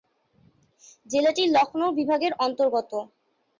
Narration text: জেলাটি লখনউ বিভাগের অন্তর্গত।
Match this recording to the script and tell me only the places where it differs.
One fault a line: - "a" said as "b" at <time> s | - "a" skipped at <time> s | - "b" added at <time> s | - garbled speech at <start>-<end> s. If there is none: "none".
none